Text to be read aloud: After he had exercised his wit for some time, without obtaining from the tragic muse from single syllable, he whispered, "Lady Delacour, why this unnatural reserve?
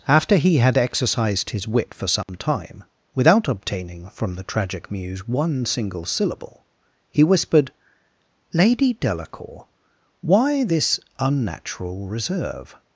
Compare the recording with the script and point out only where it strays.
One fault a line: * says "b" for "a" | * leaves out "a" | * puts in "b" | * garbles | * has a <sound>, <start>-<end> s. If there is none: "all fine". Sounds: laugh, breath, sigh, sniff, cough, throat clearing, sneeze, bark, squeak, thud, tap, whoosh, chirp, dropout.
* has a dropout, 2.2-2.3 s
* says "one" for "from"